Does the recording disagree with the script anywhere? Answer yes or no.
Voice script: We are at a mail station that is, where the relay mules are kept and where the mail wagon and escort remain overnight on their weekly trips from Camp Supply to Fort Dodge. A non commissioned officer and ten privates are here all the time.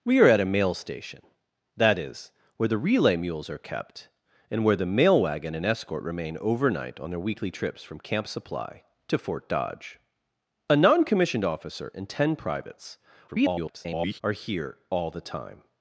yes